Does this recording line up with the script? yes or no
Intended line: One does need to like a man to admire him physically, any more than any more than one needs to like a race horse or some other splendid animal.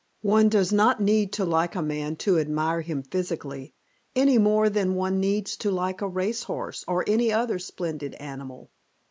no